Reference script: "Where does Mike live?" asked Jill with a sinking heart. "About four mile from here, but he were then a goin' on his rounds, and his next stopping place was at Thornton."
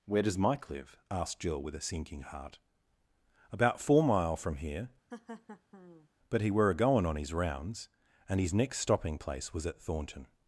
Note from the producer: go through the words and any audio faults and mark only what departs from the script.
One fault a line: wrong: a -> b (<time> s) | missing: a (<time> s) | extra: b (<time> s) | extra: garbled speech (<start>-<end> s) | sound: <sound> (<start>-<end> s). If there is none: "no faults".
sound: laugh (5.1-6.1 s)
missing: then (6.7 s)